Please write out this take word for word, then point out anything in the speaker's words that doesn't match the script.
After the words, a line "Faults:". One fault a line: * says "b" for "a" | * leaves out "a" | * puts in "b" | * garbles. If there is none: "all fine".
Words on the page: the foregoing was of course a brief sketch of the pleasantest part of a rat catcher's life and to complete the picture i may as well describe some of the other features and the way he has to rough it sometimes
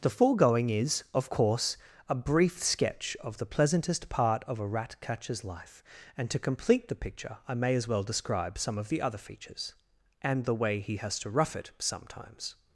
the foregoing is of course a brief sketch of the pleasantest part of a rat catcher's life and to complete the picture i may as well describe some of the other features and the way he has to rough it sometimes
Faults:
* says "is" for "was"